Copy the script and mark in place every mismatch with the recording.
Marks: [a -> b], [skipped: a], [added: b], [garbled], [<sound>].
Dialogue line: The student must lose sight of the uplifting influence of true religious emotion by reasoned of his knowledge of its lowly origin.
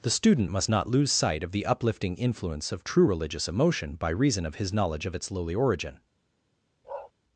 The student must [added: not] lose sight of the uplifting influence of true religious emotion by [reasoned -> reason] of his knowledge of its lowly origin. [bark]